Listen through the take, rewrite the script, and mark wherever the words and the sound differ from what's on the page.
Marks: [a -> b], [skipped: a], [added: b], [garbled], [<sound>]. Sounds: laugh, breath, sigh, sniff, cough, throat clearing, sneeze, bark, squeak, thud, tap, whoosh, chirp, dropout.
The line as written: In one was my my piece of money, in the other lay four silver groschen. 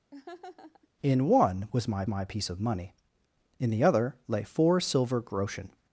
[laugh] In one was my my piece of money, in the other lay four silver groschen.